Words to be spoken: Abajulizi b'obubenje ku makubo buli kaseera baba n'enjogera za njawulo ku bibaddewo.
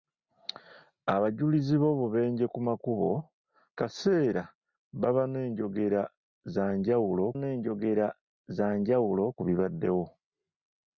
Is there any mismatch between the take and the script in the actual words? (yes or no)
yes